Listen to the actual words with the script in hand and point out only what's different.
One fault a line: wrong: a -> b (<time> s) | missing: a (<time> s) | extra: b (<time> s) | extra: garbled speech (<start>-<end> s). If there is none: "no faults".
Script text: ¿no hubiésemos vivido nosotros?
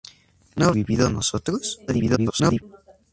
missing: hubiésemos (0.7 s)
extra: garbled speech (1.9-2.6 s)